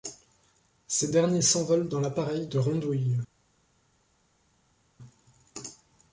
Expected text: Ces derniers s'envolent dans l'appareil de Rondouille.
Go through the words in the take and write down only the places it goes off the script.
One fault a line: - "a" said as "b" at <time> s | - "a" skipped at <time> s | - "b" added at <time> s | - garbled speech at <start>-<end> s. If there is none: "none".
none